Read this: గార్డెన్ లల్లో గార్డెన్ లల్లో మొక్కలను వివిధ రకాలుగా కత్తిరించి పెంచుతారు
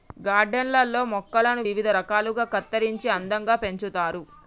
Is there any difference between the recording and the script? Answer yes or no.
yes